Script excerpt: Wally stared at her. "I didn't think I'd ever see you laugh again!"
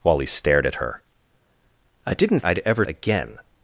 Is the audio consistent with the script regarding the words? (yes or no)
no